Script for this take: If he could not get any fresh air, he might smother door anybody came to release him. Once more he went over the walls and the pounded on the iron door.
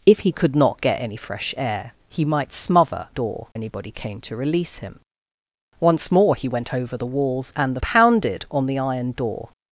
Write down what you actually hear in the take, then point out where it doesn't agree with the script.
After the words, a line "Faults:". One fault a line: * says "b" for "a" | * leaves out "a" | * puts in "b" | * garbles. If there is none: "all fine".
If he could not get any fresh air, he might smother door anybody came to release him. Once more he went over the walls and the pounded on the iron door.
Faults:
all fine